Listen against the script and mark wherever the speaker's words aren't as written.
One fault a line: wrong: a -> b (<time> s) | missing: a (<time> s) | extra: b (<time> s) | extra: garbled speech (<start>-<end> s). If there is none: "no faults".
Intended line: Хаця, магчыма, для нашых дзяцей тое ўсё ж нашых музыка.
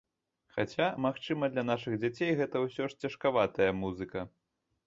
wrong: тое -> гэта (2.4 s)
wrong: нашых -> цяжкаватая (3.1 s)